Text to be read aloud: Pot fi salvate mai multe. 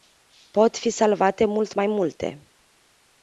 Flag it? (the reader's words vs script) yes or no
yes